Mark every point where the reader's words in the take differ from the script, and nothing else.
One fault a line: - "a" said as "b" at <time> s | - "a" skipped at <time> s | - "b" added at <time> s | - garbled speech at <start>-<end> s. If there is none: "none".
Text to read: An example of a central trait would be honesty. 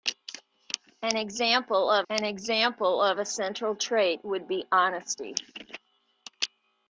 - "an example of" added at 2.1 s